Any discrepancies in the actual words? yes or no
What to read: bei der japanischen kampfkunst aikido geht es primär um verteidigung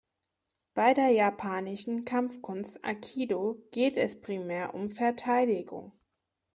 no